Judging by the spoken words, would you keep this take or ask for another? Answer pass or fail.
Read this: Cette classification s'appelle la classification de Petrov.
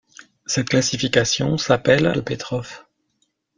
fail